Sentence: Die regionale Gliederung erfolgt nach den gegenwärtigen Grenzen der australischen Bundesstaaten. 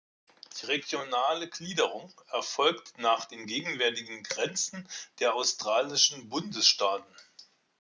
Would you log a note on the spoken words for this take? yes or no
no